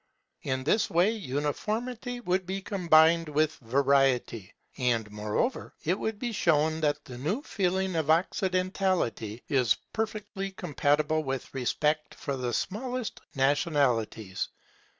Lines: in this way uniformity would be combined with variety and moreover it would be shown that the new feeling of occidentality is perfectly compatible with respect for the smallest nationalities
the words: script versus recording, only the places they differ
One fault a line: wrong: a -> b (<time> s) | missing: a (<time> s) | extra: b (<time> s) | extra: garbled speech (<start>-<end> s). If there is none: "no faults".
no faults